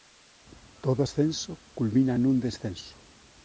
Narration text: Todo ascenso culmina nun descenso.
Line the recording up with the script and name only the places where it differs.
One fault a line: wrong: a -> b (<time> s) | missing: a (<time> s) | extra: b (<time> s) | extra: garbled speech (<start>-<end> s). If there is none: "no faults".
no faults